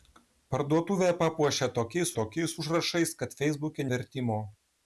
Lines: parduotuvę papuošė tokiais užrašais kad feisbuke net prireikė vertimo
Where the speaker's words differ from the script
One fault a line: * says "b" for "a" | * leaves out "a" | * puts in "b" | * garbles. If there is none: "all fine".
* puts in "tokiais"
* leaves out "net prireikė"